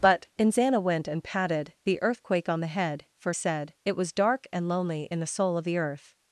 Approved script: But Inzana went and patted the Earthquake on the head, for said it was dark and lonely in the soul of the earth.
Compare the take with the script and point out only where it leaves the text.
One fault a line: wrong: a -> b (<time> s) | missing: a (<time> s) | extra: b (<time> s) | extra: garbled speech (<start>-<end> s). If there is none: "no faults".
no faults